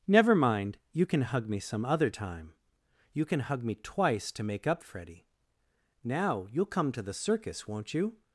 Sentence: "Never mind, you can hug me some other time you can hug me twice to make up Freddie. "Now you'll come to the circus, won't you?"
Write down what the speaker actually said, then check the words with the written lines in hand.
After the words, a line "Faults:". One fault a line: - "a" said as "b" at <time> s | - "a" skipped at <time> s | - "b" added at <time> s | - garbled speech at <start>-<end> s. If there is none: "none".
"Never mind, you can hug me some other time you can hug me twice to make up Freddie. "Now you'll come to the circus, won't you?"
Faults:
none